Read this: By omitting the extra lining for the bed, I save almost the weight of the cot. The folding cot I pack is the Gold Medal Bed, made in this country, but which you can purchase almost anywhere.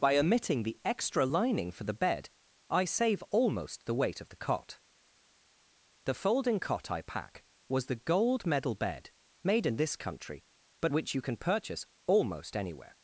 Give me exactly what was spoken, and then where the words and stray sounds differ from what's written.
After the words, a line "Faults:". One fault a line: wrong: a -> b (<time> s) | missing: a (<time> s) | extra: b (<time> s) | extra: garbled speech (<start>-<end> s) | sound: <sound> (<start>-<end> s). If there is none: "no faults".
By omitting the extra lining for the bed, I save almost the weight of the cot. The folding cot I pack was the Gold Medal Bed, made in this country, but which you can purchase almost anywhere.
Faults:
wrong: is -> was (7.7 s)